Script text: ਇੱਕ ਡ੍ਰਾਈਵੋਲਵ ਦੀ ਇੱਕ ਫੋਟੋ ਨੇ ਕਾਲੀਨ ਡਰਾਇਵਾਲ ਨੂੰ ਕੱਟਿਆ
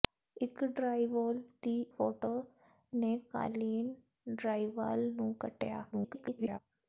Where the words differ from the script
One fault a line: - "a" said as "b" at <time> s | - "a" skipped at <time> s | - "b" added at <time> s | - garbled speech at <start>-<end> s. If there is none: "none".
- "ਇੱਕ" skipped at 1.8 s
- garbled speech at 5.9-6.6 s